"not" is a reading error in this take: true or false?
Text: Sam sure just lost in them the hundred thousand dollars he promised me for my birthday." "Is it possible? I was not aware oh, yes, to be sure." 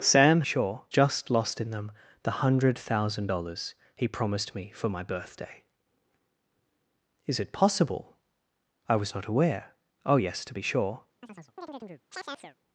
false